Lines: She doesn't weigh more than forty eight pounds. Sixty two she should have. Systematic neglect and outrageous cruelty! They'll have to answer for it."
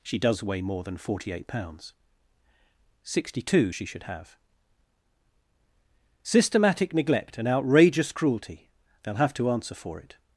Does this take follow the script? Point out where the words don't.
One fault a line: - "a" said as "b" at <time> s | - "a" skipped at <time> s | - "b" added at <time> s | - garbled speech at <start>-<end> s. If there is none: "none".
- "doesn't" said as "does" at 0.2 s